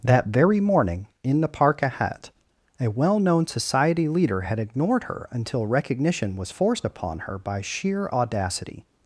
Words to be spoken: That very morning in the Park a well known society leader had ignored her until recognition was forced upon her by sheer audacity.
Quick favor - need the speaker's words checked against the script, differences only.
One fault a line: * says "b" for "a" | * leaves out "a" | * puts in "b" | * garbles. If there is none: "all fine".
* puts in "ahead"